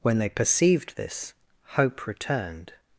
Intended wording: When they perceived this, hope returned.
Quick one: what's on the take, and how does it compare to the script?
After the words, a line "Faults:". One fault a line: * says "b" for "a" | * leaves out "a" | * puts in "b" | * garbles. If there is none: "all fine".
When they perceived this, hope returned.
Faults:
all fine